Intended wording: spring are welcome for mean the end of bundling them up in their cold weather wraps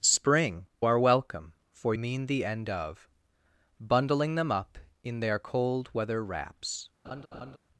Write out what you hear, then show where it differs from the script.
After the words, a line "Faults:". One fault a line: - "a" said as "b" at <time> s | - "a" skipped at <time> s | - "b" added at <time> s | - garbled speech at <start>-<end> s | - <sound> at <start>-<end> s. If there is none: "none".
spring are welcome for mean the end of bundling them up in their cold weather wraps
Faults:
- laugh at 7.0-7.6 s